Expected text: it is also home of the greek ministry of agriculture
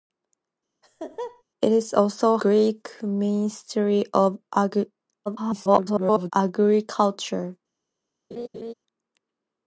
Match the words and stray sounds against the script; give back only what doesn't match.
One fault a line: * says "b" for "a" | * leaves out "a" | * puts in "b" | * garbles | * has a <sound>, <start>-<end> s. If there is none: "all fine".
* has a laugh, 0.8-1.4 s
* leaves out "home of the"
* garbles
* has a laugh, 8.3-8.7 s